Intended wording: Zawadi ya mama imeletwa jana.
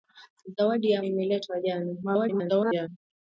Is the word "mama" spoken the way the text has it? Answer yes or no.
no